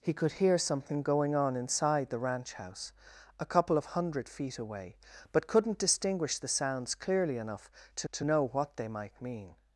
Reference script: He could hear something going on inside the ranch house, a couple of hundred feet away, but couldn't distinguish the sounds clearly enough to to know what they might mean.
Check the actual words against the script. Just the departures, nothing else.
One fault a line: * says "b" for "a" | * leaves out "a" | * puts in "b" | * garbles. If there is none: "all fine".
all fine